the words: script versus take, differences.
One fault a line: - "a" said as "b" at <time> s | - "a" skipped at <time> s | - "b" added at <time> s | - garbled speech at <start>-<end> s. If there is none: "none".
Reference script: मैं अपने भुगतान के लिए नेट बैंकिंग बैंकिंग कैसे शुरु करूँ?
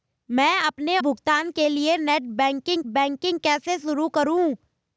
none